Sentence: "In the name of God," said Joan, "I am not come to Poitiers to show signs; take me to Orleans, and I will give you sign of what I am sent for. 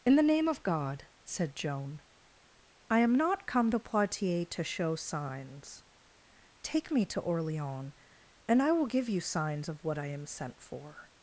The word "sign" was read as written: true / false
false